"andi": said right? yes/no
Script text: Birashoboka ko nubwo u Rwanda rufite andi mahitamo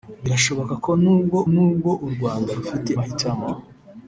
no